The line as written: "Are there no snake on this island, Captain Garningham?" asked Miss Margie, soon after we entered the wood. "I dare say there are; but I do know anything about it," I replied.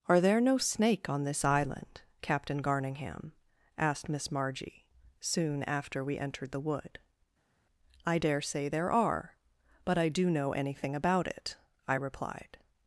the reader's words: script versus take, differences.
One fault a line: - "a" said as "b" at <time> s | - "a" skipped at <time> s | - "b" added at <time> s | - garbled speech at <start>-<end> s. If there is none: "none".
none